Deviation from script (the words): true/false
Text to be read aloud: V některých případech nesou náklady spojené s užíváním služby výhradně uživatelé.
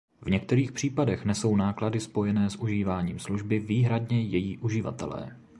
true